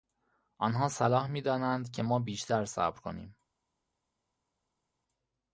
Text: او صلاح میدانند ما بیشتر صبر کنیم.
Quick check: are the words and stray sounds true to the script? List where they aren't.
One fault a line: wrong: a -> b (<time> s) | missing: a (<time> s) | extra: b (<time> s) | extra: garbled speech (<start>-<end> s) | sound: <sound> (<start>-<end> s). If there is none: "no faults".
wrong: او -> آنها (0.6 s)
extra: که (1.9 s)